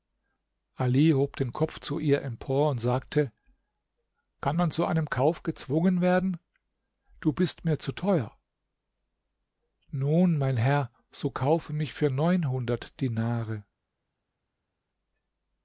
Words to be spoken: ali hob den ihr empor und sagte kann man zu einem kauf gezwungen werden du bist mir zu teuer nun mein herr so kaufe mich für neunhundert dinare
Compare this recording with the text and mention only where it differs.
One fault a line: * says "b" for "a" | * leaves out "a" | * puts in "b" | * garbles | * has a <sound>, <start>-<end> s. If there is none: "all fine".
* puts in "kopf zu"